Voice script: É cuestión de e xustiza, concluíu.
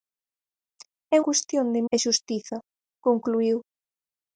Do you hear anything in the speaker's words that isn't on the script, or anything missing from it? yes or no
no